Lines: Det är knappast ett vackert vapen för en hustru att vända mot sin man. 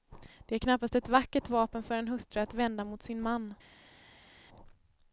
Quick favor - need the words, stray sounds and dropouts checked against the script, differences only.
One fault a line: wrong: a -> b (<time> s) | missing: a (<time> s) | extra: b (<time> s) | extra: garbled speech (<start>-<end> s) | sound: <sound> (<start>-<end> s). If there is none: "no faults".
no faults